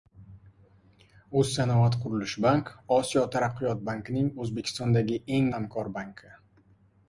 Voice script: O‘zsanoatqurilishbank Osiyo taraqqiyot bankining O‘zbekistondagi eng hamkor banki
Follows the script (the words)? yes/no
yes